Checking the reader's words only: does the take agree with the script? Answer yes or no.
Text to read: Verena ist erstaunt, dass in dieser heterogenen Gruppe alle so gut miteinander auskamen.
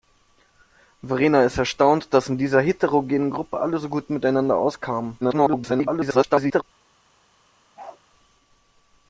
no